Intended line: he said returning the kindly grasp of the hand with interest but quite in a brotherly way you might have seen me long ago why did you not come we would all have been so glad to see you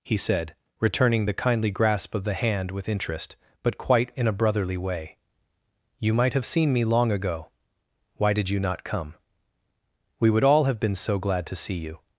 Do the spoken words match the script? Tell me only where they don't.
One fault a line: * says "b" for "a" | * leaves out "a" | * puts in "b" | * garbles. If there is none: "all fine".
all fine